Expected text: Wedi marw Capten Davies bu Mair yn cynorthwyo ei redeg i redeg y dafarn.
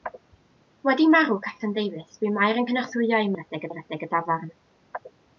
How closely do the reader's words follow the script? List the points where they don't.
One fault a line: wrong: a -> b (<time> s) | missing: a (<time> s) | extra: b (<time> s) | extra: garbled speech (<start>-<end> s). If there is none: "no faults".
no faults